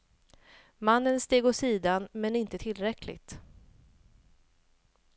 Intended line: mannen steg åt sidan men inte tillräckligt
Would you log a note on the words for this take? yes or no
no